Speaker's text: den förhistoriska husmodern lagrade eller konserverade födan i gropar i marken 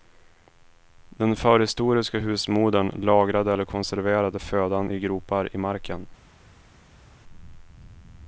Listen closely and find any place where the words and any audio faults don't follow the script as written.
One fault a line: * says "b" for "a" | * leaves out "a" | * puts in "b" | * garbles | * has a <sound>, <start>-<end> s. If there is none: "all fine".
all fine